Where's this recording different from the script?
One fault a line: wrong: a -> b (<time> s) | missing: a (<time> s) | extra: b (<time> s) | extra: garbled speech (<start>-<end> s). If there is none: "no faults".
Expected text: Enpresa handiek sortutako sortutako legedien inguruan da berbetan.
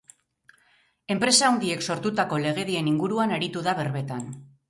missing: sortutako (2.4 s)
extra: aritu (3.4 s)